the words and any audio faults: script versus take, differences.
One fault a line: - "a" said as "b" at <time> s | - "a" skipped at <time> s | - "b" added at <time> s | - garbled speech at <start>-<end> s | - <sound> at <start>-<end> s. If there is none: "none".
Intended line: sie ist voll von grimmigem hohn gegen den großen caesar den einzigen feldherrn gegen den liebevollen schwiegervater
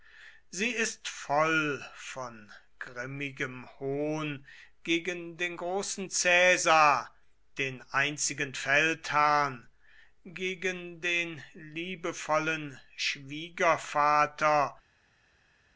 none